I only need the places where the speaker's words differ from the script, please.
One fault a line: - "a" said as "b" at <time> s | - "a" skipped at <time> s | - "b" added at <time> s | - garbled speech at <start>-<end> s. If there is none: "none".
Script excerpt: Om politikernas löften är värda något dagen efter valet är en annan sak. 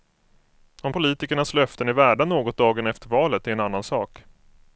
none